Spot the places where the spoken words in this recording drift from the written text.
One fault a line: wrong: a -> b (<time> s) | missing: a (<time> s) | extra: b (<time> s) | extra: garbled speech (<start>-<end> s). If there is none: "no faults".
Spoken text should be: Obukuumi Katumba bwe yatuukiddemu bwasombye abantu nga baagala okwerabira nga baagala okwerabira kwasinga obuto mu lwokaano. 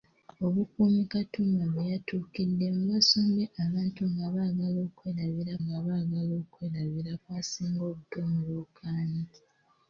no faults